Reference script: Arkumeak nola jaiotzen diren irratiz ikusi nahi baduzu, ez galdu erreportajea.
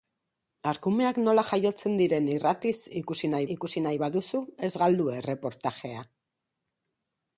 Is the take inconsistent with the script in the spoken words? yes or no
yes